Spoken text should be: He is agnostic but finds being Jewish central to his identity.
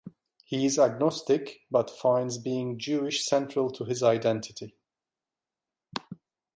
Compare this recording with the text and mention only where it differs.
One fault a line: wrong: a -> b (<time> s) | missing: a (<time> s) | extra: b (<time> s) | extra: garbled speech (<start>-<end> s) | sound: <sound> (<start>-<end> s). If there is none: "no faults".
no faults